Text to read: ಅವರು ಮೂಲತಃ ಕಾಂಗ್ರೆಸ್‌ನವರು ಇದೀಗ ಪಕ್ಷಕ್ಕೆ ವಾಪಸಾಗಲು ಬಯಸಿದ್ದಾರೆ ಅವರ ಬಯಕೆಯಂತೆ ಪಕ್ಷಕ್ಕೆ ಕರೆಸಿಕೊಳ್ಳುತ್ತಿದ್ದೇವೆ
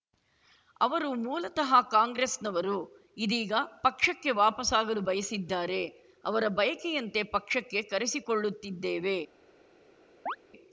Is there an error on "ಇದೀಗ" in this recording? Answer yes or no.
no